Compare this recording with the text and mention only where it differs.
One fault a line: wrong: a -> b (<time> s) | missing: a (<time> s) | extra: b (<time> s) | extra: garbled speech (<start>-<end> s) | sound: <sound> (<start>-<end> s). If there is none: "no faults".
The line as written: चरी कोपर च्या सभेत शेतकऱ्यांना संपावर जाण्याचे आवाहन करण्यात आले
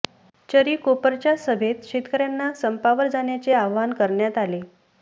no faults